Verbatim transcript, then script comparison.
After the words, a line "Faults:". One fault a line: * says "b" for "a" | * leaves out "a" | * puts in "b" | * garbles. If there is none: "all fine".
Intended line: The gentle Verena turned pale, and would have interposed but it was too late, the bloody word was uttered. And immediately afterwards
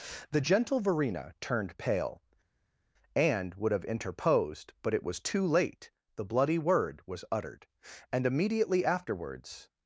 The gentle Verena turned pale, and would have interposed but it was too late, the bloody word was uttered. And immediately afterwards
Faults:
all fine